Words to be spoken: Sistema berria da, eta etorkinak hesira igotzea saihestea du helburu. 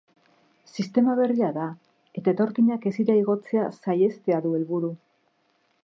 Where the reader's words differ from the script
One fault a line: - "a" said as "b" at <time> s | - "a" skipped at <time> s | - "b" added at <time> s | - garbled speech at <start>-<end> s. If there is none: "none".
none